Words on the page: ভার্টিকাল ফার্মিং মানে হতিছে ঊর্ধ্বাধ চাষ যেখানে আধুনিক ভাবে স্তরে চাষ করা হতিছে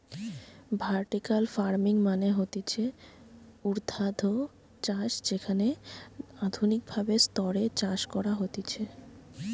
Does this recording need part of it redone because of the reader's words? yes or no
no